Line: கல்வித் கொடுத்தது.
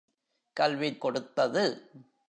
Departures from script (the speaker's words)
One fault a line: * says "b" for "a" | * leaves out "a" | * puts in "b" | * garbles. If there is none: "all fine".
all fine